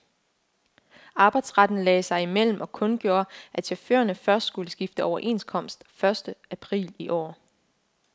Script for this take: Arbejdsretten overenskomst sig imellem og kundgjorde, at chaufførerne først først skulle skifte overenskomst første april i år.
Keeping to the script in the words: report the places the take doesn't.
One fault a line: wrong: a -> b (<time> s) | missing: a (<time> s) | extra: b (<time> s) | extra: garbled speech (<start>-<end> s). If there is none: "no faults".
wrong: overenskomst -> lagde (1.8 s)
missing: først (4.5 s)